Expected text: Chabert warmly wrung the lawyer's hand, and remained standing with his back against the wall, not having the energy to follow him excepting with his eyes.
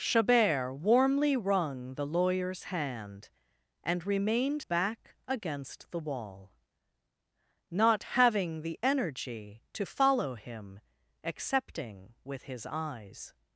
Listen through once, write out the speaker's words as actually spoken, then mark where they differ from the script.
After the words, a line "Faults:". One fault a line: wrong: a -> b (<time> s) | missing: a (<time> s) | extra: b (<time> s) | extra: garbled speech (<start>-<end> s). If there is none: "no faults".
Chabert warmly wrung the lawyer's hand, and remained back against the wall, not having the energy to follow him excepting with his eyes.
Faults:
missing: standing with his (4.6 s)